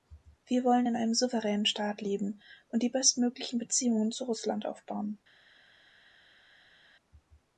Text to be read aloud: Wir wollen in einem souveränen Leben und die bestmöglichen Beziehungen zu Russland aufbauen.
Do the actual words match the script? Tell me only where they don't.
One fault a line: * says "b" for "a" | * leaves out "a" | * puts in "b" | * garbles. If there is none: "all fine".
* puts in "Staat"